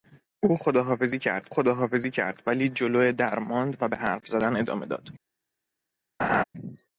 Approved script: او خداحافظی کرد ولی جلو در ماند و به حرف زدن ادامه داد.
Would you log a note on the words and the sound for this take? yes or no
yes